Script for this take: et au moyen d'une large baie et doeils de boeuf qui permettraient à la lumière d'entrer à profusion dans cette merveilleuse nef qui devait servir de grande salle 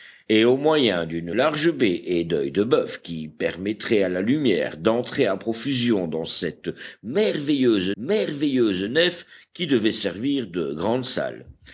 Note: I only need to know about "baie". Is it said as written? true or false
true